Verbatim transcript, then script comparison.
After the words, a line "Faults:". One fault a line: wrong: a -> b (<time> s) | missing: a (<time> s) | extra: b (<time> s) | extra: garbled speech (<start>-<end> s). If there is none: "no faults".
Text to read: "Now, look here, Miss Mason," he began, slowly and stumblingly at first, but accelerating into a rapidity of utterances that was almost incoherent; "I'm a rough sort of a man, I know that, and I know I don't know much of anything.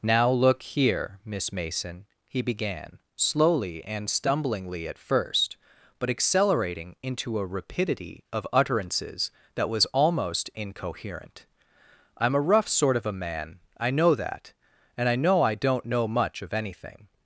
"Now, look here, Miss Mason," he began, slowly and stumblingly at first, but accelerating into a rapidity of utterances that was almost incoherent; "I'm a rough sort of a man, I know that, and I know I don't know much of anything.
Faults:
no faults